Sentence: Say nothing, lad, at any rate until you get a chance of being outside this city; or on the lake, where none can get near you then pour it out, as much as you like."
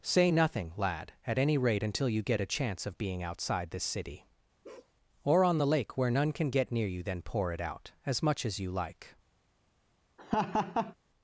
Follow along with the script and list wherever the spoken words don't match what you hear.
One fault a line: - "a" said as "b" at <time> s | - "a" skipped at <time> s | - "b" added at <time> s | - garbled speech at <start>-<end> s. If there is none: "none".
none